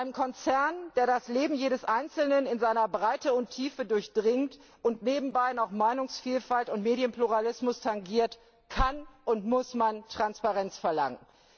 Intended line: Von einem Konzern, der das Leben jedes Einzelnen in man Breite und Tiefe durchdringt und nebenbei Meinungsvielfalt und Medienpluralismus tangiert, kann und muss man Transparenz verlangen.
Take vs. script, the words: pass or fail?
fail